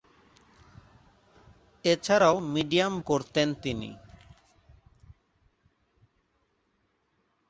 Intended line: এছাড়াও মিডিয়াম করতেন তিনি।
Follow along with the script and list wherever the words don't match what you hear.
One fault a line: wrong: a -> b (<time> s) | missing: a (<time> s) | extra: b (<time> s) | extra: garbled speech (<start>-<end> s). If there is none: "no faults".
no faults